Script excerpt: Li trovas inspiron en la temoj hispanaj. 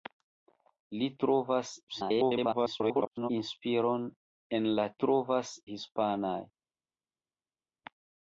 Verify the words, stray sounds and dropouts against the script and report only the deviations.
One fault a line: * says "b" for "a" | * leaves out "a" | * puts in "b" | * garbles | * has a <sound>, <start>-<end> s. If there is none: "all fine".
* garbles
* says "trovas" for "temoj"